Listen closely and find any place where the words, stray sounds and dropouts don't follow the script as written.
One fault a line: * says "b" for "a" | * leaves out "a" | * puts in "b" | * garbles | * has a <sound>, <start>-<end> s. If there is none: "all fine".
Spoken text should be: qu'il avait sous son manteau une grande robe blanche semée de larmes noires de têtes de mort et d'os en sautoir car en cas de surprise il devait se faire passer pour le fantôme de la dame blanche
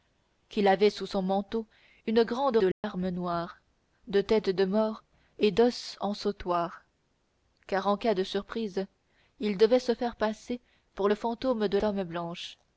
* leaves out "robe blanche semée"
* has a dropout, 2.7-2.8 s
* leaves out "la"